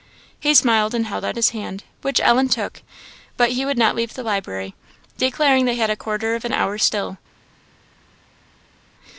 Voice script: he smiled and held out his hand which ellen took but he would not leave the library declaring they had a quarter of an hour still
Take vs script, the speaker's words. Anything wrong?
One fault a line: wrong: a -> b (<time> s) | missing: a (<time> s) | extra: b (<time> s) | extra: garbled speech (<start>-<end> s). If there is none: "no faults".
no faults